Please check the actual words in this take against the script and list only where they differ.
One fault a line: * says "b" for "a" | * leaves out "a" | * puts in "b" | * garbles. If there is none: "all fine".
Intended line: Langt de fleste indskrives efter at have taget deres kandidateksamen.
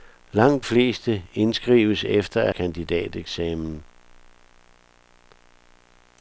* leaves out "de"
* leaves out "have taget deres"